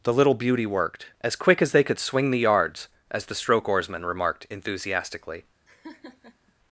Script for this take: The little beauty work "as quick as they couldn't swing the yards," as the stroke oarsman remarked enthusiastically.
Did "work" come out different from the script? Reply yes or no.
yes